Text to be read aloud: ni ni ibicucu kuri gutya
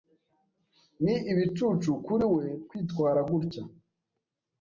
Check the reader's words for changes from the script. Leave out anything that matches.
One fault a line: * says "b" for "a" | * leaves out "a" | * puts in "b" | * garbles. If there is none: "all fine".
* leaves out "ni"
* puts in "we kwitwara"